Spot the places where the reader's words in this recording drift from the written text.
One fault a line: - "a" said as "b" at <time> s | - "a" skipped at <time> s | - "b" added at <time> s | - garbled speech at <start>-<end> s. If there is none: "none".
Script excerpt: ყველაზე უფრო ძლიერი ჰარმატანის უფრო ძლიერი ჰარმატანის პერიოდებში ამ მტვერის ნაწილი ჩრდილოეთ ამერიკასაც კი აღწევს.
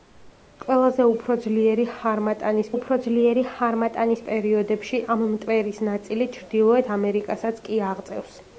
none